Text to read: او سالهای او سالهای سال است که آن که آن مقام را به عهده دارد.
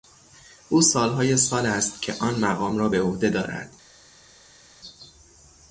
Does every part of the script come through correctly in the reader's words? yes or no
no